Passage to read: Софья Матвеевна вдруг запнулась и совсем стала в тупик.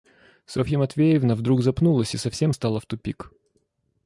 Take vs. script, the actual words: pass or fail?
pass